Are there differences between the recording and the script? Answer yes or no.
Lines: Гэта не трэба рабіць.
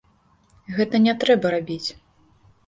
no